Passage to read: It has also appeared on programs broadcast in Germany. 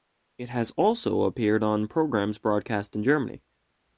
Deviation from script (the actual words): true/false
false